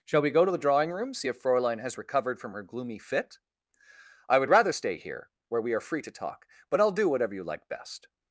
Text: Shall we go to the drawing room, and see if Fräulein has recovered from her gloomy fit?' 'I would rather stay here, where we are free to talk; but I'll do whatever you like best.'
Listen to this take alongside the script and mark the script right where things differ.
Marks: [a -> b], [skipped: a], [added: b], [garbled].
Shall we go to the drawing room, [skipped: and] see if Fräulein has recovered from her gloomy fit?' 'I would rather stay here, where we are free to talk; but I'll do whatever you like best.'